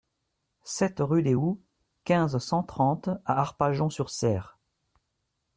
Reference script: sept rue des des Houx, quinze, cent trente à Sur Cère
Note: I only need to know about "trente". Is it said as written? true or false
true